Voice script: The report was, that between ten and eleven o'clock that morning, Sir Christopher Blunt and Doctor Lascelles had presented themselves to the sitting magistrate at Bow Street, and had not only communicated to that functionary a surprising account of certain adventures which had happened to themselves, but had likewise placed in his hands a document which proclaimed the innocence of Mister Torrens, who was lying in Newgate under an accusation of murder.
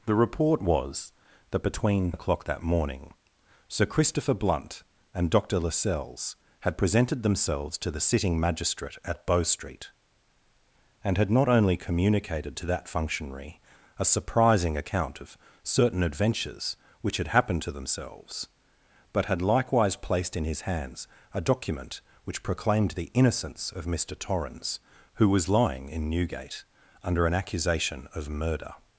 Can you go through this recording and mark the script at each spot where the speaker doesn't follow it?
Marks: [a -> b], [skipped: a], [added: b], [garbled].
The report was, that between [skipped: ten and eleven] o'clock that morning, Sir Christopher Blunt and Doctor Lascelles had presented themselves to the sitting magistrate at Bow Street, and had not only communicated to that functionary a surprising account of certain adventures which had happened to themselves, but had likewise placed in his hands a document which proclaimed the innocence of Mister Torrens, who was lying in Newgate under an accusation of murder.